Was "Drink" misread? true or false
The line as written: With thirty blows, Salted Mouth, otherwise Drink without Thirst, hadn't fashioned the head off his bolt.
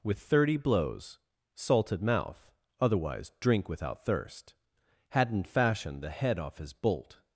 false